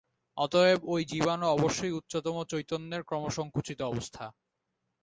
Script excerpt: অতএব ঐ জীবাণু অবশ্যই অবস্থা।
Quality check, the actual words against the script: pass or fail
fail